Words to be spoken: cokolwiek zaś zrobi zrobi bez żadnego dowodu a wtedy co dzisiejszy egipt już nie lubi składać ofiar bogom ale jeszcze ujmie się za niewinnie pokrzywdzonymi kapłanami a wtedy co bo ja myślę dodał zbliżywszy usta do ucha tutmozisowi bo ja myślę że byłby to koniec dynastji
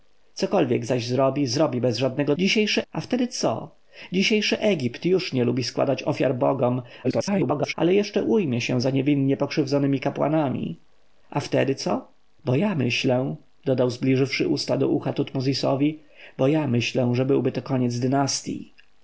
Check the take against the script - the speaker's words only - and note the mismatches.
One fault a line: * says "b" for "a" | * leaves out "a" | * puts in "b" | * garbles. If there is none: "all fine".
* says "dzisiejszy" for "dowodu"
* garbles